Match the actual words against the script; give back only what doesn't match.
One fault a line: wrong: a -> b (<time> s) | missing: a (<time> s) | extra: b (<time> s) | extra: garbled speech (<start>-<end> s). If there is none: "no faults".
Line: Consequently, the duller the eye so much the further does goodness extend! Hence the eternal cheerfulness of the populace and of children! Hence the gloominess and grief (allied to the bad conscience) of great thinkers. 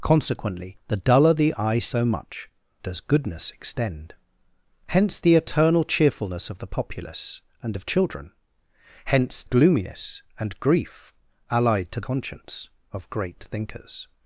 missing: the further (2.5 s)
missing: the (9.4 s)
missing: the bad (12.0 s)